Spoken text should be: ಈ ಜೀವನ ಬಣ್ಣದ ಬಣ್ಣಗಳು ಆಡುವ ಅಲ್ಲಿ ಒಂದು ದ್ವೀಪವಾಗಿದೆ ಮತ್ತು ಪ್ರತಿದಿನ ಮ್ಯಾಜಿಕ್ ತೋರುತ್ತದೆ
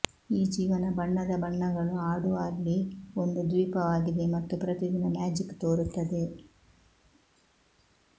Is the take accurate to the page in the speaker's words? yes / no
yes